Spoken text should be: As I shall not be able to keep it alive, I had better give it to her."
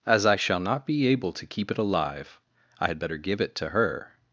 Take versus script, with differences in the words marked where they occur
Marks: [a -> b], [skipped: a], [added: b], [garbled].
As I shall not be able to keep it alive, I had better give it to her."